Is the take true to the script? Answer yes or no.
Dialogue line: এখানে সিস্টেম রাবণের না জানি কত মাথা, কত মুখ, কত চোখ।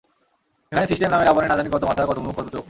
no